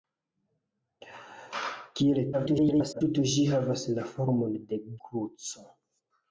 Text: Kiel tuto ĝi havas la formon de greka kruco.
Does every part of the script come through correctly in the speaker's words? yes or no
no